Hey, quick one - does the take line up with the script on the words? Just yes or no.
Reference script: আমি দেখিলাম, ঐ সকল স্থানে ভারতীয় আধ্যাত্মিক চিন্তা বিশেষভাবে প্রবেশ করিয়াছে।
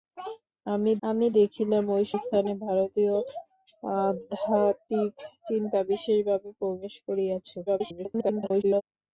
no